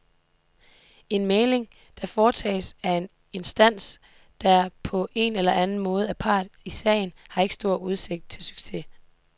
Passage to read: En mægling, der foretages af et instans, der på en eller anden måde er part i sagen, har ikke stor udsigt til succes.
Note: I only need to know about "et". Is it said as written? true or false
false